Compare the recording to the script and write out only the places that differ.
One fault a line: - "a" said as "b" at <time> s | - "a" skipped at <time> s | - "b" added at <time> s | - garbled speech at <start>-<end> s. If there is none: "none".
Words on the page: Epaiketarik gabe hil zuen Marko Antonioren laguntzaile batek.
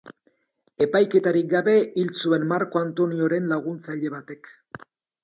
none